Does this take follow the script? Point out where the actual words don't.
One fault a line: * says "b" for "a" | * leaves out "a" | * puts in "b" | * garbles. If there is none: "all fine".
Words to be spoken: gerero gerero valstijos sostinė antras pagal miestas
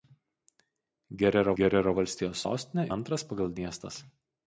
all fine